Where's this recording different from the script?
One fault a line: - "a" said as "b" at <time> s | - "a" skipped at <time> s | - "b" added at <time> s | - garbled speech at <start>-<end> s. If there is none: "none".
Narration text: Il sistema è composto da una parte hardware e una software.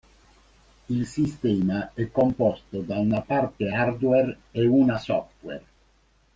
none